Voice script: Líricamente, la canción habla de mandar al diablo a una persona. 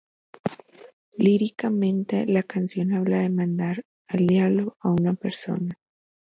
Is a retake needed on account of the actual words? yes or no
no